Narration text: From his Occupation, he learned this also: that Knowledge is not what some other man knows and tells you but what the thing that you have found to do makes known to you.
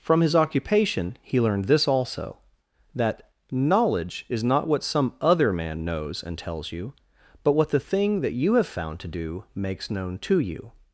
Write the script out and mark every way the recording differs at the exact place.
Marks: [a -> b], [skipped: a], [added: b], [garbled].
From his Occupation, he learned this also: that Knowledge is not what some other man knows and tells you but what the thing that you have found to do makes known to you.